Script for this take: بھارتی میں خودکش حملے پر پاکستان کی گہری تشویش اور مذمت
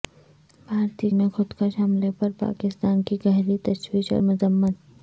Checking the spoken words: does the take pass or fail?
pass